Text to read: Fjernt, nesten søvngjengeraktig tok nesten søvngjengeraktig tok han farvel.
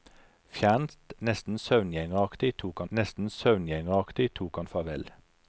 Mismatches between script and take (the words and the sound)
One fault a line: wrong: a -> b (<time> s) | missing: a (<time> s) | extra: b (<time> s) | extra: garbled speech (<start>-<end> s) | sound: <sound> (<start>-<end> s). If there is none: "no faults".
no faults